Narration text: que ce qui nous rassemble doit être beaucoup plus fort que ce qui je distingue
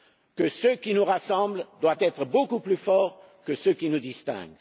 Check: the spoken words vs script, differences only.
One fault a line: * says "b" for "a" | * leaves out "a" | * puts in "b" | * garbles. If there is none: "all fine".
* says "nous" for "je"